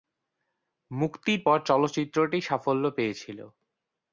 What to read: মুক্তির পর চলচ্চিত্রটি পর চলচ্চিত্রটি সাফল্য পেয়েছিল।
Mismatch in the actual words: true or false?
true